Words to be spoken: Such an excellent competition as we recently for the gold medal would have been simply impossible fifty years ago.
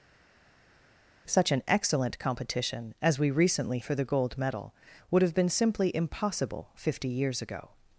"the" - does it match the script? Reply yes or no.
yes